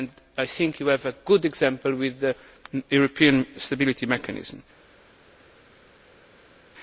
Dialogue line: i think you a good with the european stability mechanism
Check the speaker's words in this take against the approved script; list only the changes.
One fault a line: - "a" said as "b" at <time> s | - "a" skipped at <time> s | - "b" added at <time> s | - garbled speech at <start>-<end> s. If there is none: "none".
- "have" added at 0.9 s
- "example" added at 1.4 s